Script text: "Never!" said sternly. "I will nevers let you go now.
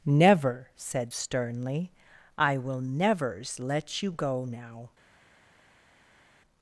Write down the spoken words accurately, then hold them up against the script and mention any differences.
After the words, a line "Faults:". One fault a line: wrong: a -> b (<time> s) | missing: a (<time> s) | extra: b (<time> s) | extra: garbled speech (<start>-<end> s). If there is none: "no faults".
"Never!" said sternly. "I will nevers let you go now.
Faults:
no faults